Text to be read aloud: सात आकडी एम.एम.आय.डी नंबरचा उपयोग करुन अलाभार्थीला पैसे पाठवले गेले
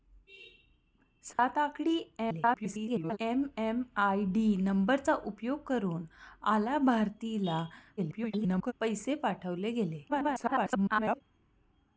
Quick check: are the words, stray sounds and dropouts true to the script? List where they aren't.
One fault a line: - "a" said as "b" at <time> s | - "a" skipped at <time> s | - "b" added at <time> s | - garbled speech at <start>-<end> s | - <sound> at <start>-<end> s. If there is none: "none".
- dropout at 1.3-1.4 s
- garbled speech at 2.2-3.2 s
- garbled speech at 8.0-8.7 s
- garbled speech at 10.1-11.2 s